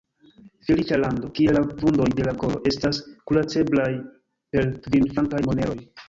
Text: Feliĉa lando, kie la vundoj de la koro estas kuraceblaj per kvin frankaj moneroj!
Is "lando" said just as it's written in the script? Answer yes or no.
yes